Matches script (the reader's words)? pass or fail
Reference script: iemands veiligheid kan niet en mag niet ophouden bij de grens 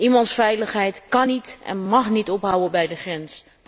pass